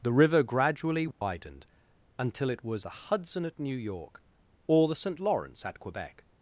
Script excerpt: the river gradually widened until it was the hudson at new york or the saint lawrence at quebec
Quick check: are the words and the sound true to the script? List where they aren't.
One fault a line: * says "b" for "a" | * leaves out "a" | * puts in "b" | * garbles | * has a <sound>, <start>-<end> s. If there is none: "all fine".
* has a dropout, 1.1-1.2 s